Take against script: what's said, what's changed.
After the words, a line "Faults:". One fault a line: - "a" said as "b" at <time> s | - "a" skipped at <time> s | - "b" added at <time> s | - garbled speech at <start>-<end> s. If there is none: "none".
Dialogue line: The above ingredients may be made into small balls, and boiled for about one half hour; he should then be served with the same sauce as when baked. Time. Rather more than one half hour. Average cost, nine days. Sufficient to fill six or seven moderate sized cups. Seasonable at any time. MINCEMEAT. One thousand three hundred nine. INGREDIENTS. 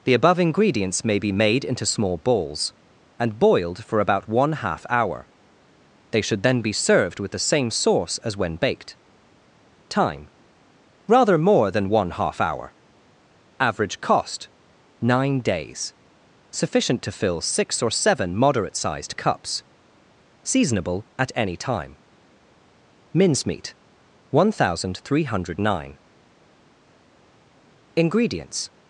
The above ingredients may be made into small balls, and boiled for about one half hour; they should then be served with the same sauce as when baked. Time. Rather more than one half hour. Average cost, nine days. Sufficient to fill six or seven moderate sized cups. Seasonable at any time. MINCEMEAT. One thousand three hundred nine. INGREDIENTS.
Faults:
- "he" said as "they" at 6.1 s